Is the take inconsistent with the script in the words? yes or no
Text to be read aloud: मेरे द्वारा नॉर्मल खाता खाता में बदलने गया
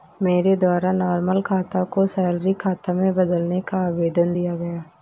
yes